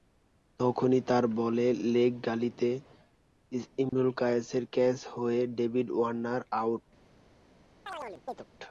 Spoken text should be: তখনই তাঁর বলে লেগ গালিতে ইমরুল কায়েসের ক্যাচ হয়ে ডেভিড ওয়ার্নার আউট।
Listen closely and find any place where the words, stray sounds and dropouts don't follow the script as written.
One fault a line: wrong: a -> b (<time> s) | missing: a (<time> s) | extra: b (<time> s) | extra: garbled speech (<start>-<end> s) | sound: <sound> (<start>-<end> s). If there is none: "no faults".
sound: dropout (3.9-3.9 s)
sound: chirp (7.9-8.5 s)